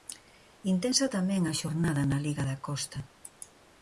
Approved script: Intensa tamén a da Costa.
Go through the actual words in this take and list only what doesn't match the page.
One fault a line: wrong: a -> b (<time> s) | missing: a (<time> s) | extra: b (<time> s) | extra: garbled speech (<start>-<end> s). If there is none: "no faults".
extra: xornada na liga (1.6 s)